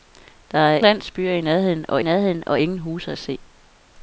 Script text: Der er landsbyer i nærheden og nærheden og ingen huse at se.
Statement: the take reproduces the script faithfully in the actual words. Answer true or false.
true